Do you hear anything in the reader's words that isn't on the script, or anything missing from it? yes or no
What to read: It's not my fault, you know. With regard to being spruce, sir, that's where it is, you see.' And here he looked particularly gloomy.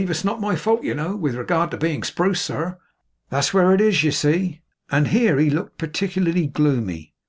no